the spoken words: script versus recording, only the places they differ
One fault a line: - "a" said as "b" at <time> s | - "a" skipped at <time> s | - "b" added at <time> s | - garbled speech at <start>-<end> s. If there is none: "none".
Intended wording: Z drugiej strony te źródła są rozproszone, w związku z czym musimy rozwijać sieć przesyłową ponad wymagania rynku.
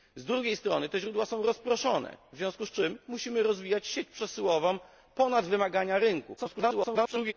- garbled speech at 6.4-7.3 s